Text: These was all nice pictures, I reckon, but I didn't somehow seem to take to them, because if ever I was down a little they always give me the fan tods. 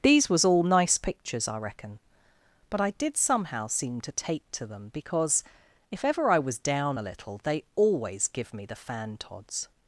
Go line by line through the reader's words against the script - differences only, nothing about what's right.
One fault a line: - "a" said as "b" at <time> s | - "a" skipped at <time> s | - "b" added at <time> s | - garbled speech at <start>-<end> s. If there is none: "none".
- "didn't" said as "did" at 2.9 s